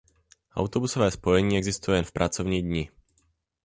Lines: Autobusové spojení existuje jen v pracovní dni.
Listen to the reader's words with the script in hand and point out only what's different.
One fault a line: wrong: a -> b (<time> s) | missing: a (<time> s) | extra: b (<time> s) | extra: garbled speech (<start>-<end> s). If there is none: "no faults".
no faults